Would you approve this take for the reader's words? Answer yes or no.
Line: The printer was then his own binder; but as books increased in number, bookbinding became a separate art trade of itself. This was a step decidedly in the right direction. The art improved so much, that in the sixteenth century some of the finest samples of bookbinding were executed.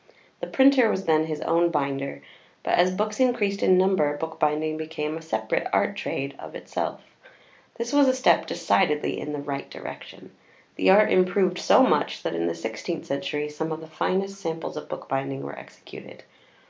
yes